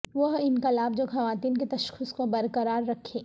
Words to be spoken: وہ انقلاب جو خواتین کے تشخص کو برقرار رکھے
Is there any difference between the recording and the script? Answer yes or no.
no